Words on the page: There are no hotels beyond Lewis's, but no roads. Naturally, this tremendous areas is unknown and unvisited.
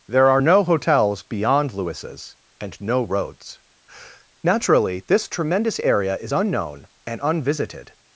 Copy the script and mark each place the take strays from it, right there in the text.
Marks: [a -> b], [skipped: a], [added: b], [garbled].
There are no hotels beyond Lewis's, [but -> and] no roads. Naturally, this tremendous [areas -> area] is unknown and unvisited.